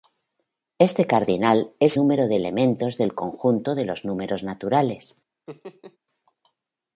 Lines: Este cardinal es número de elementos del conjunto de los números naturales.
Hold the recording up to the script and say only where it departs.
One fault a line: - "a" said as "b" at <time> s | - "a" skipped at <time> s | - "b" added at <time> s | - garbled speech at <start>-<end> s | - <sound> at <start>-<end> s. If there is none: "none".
- laugh at 5.5-6.0 s